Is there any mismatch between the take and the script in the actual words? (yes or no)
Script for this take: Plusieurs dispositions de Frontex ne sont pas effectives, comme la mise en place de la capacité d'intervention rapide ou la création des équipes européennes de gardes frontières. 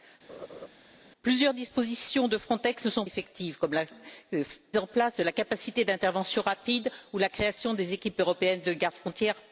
yes